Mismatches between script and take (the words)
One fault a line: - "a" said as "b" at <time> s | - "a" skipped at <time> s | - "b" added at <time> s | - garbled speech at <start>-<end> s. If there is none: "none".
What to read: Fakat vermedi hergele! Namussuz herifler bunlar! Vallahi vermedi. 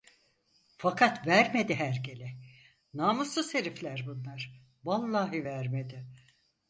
none